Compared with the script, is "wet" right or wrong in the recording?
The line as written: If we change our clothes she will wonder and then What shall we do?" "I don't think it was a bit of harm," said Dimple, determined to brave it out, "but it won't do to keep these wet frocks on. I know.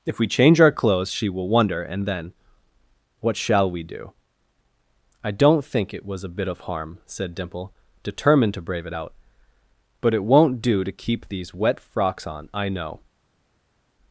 right